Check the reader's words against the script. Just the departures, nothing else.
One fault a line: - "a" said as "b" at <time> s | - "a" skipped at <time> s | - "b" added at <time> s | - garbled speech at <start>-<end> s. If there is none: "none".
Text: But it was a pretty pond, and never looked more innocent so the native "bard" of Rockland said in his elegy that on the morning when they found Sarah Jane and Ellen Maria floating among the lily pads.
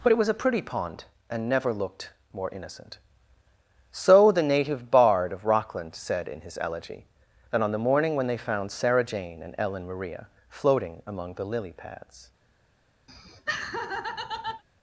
none